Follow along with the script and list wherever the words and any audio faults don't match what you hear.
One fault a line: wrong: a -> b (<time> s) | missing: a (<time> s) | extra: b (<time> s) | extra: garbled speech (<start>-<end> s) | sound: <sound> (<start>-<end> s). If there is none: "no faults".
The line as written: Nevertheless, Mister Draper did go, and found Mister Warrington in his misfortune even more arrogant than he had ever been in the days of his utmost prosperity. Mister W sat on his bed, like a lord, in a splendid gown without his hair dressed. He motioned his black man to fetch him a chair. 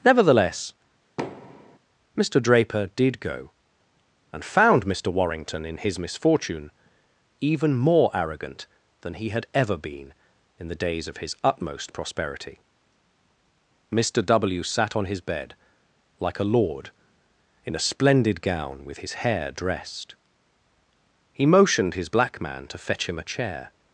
sound: thud (1.2-1.8 s)
wrong: without -> with (18.8 s)